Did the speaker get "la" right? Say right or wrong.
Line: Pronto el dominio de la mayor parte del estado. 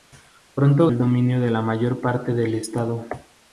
right